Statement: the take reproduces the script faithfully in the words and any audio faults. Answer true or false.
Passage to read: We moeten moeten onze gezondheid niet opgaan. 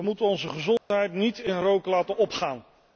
false